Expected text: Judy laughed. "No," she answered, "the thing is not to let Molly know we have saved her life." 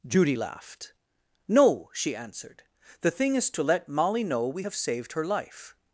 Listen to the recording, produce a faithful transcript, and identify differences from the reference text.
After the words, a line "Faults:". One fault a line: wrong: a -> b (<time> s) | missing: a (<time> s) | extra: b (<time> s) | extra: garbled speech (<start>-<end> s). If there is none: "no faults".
Judy laughed. "No," she answered, "the thing is to let Molly know we have saved her life."
Faults:
missing: not (3.5 s)